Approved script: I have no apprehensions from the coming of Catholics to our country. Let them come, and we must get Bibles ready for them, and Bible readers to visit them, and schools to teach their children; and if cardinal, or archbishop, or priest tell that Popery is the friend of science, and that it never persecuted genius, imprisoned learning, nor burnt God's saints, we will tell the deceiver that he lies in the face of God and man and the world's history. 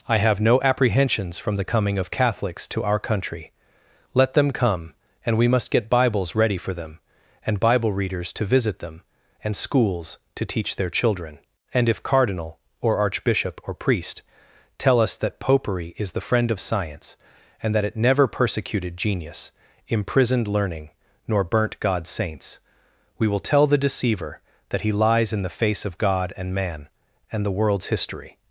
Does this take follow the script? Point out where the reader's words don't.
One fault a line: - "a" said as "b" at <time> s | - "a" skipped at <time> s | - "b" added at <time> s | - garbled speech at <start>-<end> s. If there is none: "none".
- "us" added at 15.0 s